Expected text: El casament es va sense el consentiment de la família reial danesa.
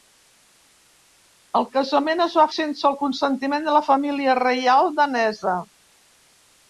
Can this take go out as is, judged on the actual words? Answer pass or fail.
pass